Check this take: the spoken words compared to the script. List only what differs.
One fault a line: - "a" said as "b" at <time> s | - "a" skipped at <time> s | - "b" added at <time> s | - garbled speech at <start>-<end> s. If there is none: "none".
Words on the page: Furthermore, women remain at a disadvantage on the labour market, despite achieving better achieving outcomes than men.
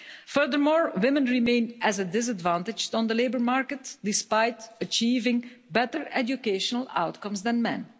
- "achieving" said as "educational" at 6.1 s